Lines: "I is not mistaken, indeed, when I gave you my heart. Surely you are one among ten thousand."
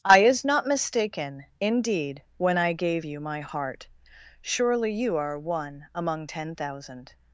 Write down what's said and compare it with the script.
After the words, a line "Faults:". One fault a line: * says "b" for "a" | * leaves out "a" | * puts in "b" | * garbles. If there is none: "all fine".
"I is not mistaken, indeed, when I gave you my heart. Surely you are one among ten thousand."
Faults:
all fine